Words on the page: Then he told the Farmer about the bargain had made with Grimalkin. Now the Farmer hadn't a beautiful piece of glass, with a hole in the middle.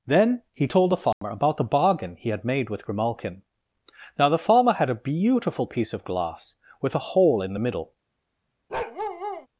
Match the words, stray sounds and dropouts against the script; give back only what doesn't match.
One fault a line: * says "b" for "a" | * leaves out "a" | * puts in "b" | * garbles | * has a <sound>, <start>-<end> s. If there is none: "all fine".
* has a dropout, 1.1-1.2 s
* puts in "he"
* says "had" for "hadn't"
* has a bark, 8.7-9.5 s